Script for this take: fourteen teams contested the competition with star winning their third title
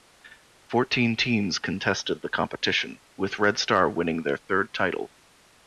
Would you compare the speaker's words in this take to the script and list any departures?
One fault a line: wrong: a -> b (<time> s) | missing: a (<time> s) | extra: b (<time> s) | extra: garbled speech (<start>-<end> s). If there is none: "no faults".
extra: red (3.4 s)